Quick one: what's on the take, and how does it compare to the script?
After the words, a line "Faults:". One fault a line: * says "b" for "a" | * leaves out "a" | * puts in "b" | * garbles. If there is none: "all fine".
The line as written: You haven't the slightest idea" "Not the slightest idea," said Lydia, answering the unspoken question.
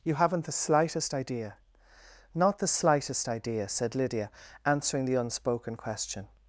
You haven't the slightest idea" "Not the slightest idea," said Lydia, answering the unspoken question.
Faults:
all fine